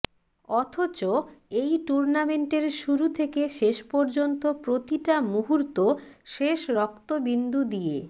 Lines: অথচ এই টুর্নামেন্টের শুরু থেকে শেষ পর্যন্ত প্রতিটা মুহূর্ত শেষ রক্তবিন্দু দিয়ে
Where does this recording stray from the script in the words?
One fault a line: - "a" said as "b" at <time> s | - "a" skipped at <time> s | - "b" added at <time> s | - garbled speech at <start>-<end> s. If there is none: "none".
none